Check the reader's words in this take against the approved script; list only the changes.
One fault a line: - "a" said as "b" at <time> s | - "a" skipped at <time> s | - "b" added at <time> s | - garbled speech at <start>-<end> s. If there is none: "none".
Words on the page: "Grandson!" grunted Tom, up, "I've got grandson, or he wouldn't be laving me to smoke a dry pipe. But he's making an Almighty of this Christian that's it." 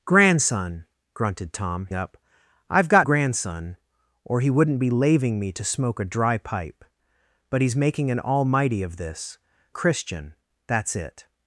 none